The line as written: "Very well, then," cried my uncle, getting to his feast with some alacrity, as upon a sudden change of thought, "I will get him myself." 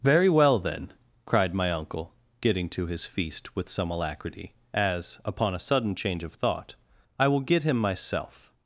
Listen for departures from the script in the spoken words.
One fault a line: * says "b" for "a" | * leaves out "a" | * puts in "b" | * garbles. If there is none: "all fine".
all fine